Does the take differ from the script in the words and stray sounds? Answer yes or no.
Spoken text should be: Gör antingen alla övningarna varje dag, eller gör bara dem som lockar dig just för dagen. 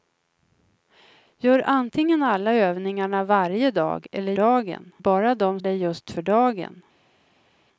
yes